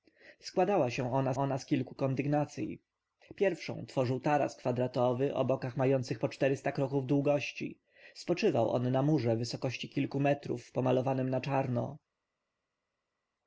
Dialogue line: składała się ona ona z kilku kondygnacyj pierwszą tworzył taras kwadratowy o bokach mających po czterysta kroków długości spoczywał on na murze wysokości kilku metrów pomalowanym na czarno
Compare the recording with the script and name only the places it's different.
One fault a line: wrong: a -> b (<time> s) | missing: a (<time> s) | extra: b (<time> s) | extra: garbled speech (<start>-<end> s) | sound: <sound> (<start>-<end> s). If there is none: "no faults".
no faults